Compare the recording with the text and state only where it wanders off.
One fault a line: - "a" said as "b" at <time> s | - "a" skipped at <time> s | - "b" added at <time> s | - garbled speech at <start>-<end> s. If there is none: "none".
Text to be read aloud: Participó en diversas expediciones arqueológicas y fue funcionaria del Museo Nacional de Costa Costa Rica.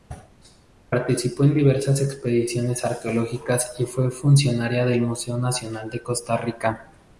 - "Costa" skipped at 6.4 s